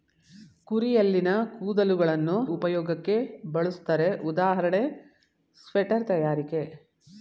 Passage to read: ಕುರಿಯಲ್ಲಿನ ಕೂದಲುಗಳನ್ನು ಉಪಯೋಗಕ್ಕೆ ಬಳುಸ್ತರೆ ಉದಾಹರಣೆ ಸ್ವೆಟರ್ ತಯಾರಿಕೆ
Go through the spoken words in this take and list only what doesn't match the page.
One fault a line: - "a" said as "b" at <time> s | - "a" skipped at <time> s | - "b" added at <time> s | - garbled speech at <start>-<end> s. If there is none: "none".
none